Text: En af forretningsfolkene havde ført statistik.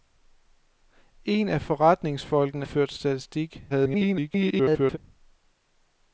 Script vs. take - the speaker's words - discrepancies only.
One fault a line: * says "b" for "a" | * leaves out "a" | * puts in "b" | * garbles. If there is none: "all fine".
* leaves out "havde"
* garbles